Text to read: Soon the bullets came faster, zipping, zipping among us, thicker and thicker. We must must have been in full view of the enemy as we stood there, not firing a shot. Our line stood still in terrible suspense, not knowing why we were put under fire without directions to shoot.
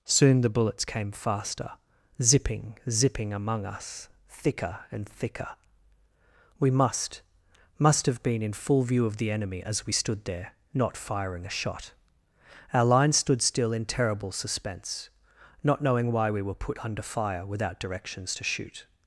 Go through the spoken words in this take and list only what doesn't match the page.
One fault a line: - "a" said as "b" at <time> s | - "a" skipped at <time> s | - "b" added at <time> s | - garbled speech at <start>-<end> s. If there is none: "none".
none